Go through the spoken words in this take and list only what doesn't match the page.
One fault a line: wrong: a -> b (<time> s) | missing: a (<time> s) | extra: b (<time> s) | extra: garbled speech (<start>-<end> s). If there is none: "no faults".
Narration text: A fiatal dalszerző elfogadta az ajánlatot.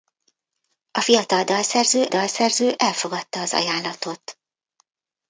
extra: dalszerző (2.1 s)